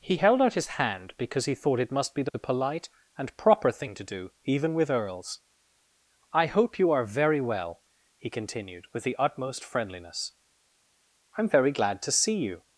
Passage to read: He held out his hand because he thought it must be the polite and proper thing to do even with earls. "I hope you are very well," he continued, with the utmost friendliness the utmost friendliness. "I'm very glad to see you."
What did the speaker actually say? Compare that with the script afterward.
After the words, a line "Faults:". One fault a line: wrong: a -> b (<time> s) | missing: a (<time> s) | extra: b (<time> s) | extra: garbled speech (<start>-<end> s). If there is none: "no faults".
He held out his hand because he thought it must be the polite and proper thing to do even with earls. "I hope you are very well," he continued, with the utmost friendliness. "I'm very glad to see you."
Faults:
missing: the utmost friendliness (10.3 s)